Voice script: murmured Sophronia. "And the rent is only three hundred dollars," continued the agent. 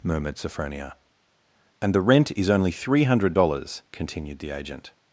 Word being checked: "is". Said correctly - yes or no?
yes